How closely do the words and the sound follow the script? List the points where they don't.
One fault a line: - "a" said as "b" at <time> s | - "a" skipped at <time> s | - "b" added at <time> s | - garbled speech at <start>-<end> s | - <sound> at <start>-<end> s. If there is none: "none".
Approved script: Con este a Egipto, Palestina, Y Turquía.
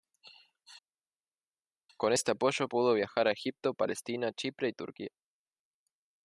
- "apoyo pudo viajar" added at 2.3 s
- "Chipre" added at 4.3 s